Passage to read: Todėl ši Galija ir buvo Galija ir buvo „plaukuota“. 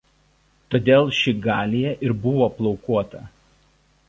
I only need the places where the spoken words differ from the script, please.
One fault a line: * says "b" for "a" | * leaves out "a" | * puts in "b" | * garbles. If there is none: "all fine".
* leaves out "Galija ir buvo"